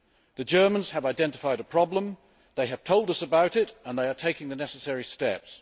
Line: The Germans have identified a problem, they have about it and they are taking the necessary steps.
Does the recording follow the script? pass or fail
fail